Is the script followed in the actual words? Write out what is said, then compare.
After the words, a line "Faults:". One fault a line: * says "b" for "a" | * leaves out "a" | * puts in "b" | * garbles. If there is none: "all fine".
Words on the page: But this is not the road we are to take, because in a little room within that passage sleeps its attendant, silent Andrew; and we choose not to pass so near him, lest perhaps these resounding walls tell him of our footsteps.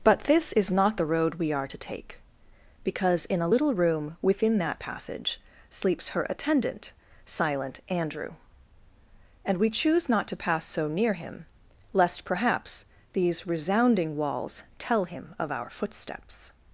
But this is not the road we are to take, because in a little room within that passage sleeps her attendant, silent Andrew; and we choose not to pass so near him, lest perhaps these resounding walls tell him of our footsteps.
Faults:
* says "her" for "its"